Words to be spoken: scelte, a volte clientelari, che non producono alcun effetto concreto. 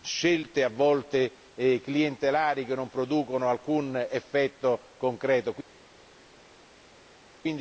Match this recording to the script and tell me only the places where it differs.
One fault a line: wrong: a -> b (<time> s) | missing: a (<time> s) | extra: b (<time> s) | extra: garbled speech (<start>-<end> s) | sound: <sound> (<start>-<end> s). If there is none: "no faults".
no faults